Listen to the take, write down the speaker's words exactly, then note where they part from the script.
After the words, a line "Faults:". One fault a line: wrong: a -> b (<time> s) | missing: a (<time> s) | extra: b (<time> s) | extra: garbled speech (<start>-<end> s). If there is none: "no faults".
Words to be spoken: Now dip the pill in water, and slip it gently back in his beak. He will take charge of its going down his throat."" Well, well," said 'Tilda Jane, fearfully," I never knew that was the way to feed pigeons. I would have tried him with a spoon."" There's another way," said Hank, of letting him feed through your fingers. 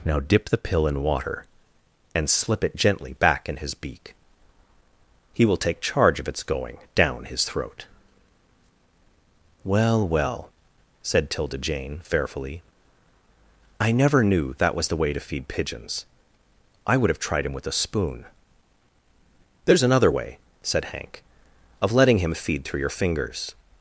Now dip the pill in water, and slip it gently back in his beak. He will take charge of its going down his throat."" Well, well," said 'Tilda Jane, fearfully," I never knew that was the way to feed pigeons. I would have tried him with a spoon."" There's another way," said Hank, of letting him feed through your fingers.
Faults:
no faults